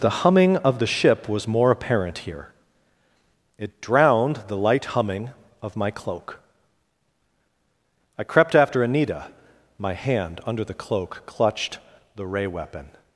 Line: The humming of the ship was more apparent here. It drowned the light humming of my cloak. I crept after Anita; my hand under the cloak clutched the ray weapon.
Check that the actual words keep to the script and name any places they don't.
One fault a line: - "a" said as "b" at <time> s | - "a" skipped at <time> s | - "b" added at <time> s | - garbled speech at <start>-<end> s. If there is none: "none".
none